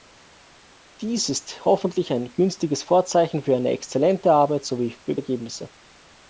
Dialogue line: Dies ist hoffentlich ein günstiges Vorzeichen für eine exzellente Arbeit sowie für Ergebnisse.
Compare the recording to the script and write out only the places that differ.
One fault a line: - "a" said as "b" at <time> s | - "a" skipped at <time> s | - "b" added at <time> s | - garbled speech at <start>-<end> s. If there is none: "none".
none